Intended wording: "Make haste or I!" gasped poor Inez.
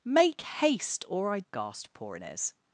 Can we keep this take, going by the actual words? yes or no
yes